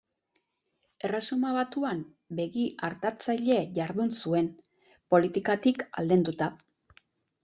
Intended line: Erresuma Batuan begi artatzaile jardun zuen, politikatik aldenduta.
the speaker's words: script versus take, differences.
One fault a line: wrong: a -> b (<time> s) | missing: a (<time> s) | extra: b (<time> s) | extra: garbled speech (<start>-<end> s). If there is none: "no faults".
no faults